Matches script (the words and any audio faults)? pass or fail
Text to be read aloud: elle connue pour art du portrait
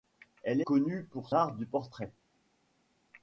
pass